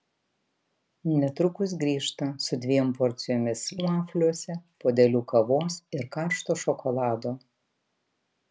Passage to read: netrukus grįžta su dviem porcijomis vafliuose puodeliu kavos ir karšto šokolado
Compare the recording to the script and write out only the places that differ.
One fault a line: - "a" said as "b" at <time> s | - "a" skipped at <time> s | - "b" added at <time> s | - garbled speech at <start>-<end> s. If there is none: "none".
none